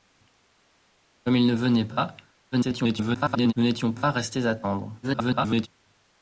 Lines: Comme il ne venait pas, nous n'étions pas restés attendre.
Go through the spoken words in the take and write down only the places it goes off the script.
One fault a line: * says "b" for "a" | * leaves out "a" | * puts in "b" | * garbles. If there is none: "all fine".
* garbles
* garbles